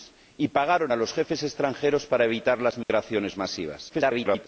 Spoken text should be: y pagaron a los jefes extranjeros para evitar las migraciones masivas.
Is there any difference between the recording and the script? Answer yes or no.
yes